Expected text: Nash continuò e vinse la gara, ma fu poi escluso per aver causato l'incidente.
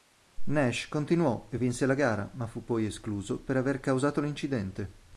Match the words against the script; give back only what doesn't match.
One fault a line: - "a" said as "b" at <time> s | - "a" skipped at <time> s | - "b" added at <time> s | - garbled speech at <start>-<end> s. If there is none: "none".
none